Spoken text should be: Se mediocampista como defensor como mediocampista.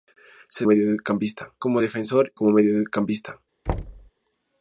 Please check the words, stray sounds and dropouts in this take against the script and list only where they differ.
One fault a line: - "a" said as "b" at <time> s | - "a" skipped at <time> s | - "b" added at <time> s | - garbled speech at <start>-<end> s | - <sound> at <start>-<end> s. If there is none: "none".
- thud at 3.7-4.1 s